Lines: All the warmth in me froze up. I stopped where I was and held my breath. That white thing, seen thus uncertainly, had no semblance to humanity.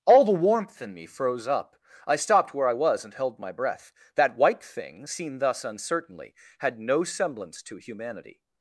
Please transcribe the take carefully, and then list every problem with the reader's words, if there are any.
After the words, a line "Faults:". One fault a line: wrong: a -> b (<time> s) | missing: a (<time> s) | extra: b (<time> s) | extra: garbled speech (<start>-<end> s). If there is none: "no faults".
All the warmth in me froze up. I stopped where I was and held my breath. That white thing, seen thus uncertainly, had no semblance to humanity.
Faults:
no faults